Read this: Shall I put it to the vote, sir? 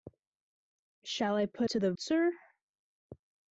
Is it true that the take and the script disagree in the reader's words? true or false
true